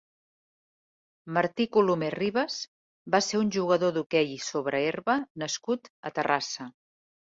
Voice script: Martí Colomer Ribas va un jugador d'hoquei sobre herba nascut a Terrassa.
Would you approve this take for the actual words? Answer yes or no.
no